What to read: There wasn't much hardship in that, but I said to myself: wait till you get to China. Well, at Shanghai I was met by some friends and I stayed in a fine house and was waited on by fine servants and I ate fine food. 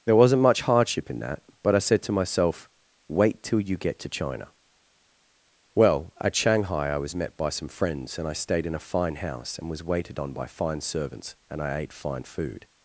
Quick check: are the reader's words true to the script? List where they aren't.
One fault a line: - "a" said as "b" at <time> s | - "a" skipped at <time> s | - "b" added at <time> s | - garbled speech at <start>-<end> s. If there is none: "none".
none